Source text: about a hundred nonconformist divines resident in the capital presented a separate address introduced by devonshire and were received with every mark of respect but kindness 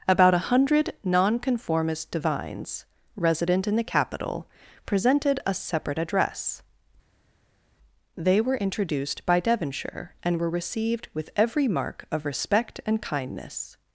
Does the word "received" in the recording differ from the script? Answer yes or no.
no